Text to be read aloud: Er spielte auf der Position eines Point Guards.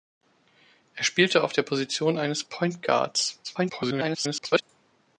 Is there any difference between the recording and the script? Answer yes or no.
yes